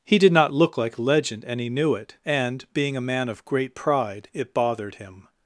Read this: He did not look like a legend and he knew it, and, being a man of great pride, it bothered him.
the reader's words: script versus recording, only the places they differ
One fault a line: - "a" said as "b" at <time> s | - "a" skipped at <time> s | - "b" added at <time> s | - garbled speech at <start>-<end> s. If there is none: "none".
none